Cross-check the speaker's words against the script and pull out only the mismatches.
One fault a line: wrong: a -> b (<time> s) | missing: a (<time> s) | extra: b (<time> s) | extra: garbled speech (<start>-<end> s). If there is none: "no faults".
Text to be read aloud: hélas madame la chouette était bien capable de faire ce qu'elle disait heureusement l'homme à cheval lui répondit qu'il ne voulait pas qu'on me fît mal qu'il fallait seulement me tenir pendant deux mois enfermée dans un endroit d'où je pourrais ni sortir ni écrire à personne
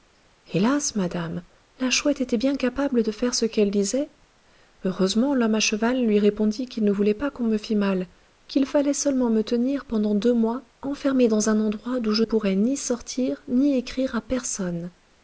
no faults